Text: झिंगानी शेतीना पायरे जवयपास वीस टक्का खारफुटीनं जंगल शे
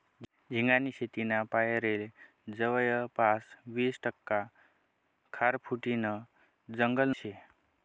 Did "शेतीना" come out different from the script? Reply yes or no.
no